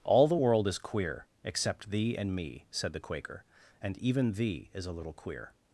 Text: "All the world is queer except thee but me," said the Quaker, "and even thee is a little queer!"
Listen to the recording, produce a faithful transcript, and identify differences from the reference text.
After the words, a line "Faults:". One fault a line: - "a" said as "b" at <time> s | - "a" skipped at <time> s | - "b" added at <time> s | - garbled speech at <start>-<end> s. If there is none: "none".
"All the world is queer except thee and me," said the Quaker, "and even thee is a little queer!"
Faults:
- "but" said as "and" at 2.2 s